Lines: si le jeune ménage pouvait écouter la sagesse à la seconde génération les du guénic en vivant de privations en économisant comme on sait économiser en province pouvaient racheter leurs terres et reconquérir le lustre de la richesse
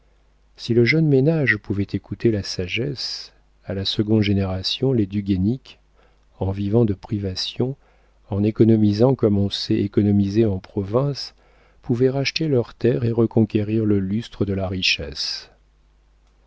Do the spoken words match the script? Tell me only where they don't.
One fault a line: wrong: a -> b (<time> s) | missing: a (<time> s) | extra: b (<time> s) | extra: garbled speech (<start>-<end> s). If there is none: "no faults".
no faults